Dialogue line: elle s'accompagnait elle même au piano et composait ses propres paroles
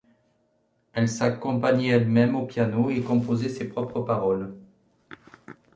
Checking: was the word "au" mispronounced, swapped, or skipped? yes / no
no